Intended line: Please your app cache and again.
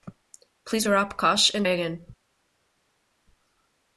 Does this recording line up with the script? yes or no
yes